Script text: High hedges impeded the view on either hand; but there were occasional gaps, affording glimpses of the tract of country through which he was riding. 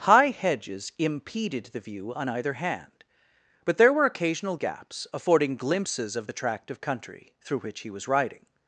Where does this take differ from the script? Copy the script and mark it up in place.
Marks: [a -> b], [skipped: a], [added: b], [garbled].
High hedges impeded the view on either hand; but there were occasional gaps, affording glimpses of the tract of country through which he was riding.